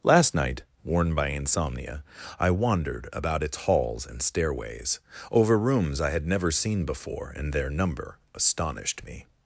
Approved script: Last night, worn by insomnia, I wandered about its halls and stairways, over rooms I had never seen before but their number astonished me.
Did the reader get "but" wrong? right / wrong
wrong